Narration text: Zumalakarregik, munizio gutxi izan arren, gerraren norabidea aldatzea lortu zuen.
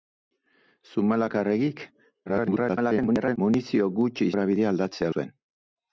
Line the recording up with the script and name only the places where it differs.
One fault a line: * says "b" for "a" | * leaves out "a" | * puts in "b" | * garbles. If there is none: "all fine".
* garbles
* leaves out "izan arren gerraren"
* leaves out "lortu"